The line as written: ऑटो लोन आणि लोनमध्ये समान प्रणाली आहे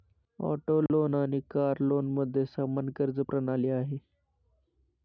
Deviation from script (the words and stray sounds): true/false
true